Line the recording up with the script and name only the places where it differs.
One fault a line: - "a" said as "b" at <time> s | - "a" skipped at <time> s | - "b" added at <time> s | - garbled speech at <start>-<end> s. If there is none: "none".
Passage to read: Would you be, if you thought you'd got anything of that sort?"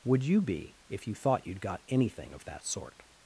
none